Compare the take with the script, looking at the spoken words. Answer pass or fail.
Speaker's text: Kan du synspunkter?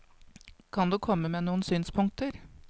fail